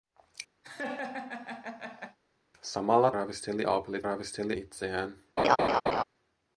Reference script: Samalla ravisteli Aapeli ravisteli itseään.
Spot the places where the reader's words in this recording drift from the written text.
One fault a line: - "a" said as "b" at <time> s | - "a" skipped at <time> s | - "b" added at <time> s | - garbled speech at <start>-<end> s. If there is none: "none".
none